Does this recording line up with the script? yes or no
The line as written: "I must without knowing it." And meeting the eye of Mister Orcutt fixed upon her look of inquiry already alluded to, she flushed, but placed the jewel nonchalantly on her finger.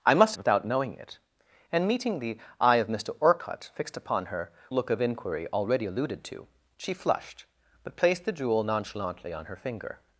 yes